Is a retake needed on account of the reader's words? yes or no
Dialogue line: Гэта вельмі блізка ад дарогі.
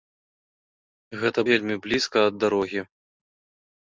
no